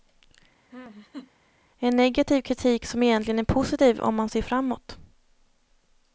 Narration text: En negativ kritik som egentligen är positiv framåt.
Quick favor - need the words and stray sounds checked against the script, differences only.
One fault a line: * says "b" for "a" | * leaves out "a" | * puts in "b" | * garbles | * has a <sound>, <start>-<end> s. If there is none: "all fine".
* has a laugh, 0.7-1.3 s
* puts in "om man ser"